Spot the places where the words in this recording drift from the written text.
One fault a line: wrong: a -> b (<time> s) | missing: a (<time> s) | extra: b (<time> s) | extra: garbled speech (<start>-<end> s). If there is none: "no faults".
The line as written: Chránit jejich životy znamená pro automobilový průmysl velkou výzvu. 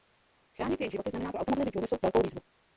no faults